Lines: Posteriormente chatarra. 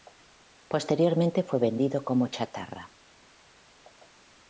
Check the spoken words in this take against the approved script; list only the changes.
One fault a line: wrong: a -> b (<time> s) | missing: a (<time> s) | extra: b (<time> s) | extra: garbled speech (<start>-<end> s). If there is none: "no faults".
extra: fue vendido como (1.4 s)